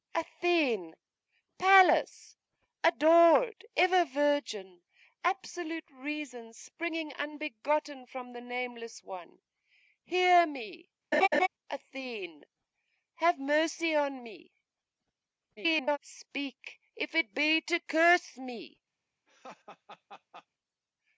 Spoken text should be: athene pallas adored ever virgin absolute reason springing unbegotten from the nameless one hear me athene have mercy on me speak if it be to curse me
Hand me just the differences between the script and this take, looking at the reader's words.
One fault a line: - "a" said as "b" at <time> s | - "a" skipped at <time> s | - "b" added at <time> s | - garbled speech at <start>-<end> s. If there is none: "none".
- garbled speech at 15.6-16.0 s